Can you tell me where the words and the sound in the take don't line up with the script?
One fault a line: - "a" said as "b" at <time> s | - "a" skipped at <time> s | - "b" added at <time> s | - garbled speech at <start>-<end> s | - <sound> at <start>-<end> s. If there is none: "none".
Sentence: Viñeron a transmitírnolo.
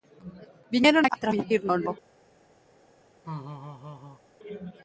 - laugh at 3.2-4.2 s